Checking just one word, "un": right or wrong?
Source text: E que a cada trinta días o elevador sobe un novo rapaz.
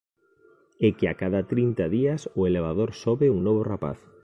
right